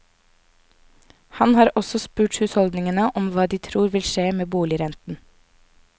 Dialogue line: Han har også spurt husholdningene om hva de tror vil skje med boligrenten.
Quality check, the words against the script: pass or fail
pass